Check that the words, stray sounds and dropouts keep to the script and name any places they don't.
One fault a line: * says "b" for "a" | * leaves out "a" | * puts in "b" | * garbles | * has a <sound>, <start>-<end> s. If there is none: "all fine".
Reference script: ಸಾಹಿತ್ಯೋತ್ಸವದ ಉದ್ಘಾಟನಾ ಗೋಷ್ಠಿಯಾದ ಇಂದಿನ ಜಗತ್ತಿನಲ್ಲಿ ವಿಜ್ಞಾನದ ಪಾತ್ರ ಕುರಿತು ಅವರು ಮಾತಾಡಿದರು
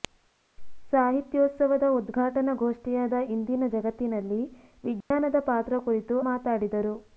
* has a dropout, 5.0-5.1 s
* leaves out "ಅವರು"